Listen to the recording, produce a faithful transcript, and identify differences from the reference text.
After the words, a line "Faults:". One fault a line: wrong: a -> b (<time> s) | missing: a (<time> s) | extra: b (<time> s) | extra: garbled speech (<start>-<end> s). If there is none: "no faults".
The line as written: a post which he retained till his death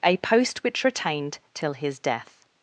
a post which retained till his death
Faults:
missing: he (0.8 s)